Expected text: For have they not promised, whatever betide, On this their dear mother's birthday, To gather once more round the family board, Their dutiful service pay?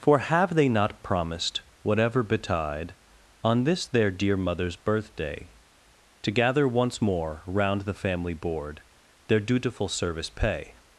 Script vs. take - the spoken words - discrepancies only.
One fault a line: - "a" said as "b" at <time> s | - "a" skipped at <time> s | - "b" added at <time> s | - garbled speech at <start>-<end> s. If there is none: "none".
none